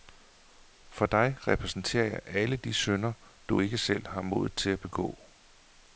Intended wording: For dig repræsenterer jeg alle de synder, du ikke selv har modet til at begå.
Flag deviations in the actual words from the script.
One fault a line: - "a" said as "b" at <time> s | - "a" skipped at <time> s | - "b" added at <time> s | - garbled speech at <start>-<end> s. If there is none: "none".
none